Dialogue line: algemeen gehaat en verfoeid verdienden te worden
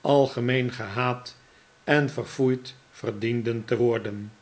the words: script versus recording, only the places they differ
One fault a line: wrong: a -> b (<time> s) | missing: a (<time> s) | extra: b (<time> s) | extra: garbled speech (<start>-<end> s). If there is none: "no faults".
no faults